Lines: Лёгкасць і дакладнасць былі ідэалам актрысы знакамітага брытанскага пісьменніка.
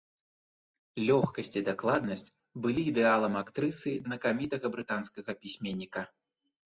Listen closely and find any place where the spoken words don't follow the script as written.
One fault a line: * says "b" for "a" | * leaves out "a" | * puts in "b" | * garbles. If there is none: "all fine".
all fine